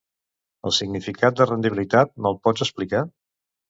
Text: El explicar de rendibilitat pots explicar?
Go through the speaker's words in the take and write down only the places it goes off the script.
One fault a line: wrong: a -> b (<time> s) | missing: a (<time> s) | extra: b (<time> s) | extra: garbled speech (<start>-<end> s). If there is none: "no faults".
wrong: explicar -> significat (0.8 s)
extra: me'l (2.2 s)